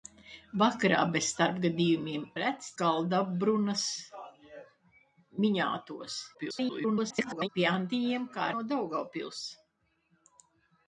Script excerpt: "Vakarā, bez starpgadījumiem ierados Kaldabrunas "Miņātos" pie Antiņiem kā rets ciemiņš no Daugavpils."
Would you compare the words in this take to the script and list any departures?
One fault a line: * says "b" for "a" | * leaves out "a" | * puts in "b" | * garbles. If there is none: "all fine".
* says "rets" for "ierados"
* garbles
* leaves out "rets ciemiņš"